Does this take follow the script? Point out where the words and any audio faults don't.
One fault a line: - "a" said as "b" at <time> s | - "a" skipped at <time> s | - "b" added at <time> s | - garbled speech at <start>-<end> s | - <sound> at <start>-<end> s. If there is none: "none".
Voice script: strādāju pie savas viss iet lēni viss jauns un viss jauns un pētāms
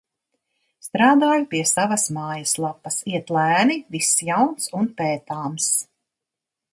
- "viss" said as "mājaslapas" at 2.2 s
- "viss jauns un" skipped at 4.9 s